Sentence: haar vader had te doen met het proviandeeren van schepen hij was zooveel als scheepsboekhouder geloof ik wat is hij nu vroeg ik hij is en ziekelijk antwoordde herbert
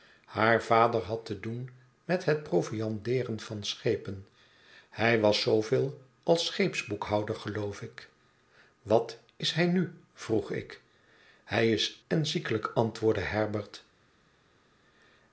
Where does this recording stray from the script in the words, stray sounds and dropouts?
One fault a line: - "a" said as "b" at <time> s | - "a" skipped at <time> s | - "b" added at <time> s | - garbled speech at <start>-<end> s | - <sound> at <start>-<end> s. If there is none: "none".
none